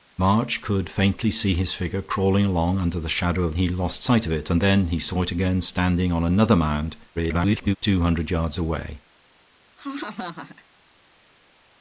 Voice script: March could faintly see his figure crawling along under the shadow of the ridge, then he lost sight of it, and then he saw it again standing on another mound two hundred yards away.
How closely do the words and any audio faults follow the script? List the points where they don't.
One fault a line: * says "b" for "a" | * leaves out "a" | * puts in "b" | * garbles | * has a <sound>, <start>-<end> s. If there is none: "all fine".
* leaves out "the ridge then"
* garbles
* has a laugh, 9.8-10.7 s